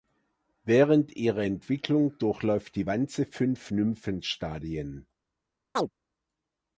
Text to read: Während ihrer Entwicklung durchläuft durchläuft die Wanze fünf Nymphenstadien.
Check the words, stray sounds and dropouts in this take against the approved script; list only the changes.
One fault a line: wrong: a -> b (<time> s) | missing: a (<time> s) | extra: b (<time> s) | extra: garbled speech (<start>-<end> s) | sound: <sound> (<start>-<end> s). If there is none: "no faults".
missing: durchläuft (2.8 s)
sound: chirp (5.8-5.9 s)